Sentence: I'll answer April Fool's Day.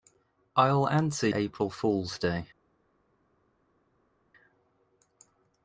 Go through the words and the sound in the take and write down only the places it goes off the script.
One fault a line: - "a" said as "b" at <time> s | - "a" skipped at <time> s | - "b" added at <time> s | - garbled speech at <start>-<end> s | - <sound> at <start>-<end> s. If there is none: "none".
none